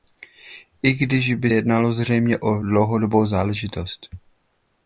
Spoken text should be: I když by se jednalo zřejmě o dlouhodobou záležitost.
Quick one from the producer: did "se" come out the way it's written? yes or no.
no